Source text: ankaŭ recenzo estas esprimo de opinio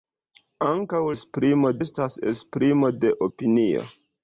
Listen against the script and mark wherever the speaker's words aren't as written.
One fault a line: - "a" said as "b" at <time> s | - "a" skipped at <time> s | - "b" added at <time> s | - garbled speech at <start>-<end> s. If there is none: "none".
- "recenzo" said as "esprimo" at 1.2 s